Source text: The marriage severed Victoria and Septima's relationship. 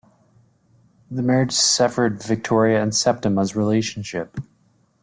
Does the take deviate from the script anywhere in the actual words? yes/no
no